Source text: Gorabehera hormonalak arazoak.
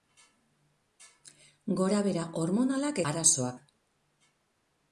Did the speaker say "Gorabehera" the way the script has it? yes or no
yes